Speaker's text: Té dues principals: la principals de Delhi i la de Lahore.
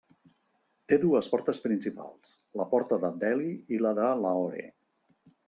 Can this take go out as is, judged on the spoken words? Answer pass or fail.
fail